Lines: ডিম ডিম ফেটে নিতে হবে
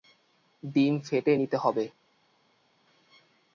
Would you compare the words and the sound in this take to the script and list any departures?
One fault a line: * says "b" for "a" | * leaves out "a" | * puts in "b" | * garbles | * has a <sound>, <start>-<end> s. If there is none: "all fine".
* leaves out "ডিম"